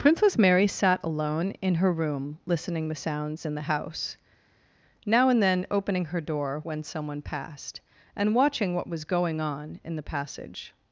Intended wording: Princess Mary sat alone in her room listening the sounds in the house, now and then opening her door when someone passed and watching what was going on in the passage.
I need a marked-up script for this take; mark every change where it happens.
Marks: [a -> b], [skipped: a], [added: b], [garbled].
Princess Mary sat alone in her room listening the sounds in the house, now and then opening her door when someone passed and watching what was going on in the passage.